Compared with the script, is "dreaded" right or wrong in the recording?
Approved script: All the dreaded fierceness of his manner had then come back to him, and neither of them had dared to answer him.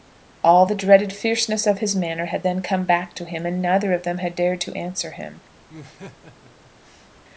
right